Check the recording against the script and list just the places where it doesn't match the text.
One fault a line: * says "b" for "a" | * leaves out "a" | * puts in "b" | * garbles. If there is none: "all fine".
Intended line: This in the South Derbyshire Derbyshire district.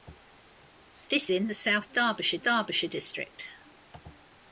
all fine